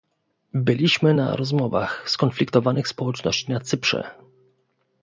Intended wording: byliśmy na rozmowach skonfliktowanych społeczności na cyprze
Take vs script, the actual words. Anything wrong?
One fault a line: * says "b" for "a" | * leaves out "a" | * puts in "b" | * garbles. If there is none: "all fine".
all fine